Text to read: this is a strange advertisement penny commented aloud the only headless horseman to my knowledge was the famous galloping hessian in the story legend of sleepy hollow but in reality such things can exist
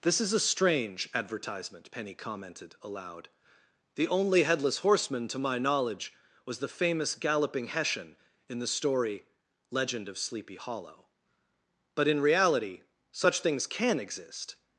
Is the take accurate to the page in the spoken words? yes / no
yes